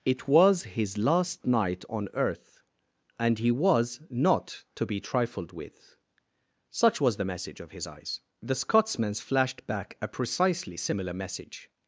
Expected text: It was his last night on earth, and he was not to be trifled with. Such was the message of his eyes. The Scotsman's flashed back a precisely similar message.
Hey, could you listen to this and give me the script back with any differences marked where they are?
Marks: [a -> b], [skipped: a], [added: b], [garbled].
It was his last night on earth, and he was not to be trifled with. Such was the message of his eyes. The Scotsman's flashed back a precisely similar message.